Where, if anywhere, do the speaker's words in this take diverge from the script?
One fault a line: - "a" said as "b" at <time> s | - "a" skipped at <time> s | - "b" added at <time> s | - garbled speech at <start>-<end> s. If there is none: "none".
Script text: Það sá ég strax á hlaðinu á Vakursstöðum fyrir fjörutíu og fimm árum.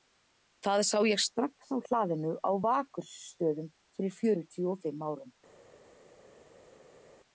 none